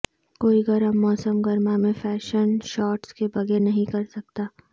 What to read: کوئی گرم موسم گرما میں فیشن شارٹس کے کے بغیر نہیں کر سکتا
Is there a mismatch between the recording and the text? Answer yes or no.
yes